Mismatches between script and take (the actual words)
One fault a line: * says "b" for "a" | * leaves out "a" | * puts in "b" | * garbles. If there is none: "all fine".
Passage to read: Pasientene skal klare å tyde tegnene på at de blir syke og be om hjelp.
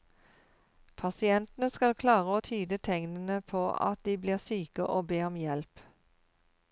all fine